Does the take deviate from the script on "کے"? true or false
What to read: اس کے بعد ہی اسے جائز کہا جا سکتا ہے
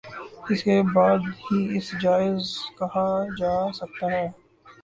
false